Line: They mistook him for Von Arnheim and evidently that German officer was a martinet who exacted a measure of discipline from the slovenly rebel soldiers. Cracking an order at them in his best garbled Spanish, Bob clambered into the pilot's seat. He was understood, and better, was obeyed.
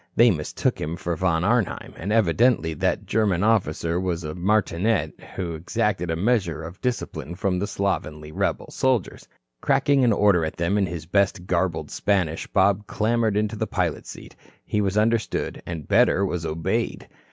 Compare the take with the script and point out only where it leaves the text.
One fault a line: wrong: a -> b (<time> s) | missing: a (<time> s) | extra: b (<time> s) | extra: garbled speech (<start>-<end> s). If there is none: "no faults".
no faults